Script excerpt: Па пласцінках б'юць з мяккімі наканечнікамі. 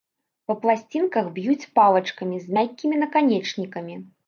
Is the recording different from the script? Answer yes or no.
yes